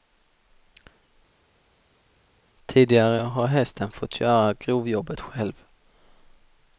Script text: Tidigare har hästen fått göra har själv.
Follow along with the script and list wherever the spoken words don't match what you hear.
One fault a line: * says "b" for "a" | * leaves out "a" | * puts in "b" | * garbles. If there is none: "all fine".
* says "grovjobbet" for "har"